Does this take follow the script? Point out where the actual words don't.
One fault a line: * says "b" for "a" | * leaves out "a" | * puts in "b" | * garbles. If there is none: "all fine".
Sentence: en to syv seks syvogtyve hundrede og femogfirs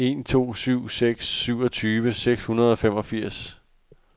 * puts in "seks"